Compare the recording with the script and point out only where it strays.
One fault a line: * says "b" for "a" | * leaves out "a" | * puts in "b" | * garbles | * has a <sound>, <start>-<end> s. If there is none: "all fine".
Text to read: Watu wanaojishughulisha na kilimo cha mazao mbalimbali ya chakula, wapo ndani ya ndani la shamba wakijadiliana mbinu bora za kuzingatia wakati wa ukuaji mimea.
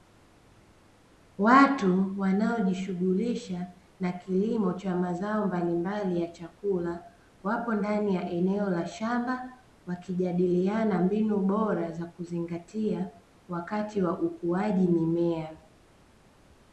* says "eneo" for "ndani"